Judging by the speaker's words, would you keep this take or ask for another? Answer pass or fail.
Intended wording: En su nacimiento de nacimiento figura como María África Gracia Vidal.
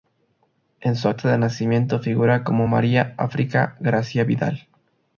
fail